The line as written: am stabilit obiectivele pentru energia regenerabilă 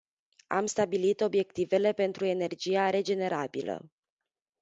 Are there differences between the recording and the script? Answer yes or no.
no